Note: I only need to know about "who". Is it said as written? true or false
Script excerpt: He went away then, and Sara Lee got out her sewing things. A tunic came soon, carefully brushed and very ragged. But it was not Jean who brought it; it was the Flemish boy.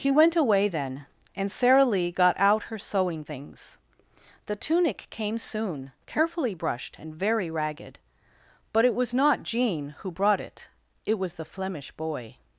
true